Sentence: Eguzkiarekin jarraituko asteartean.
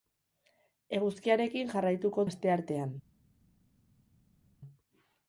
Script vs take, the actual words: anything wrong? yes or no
no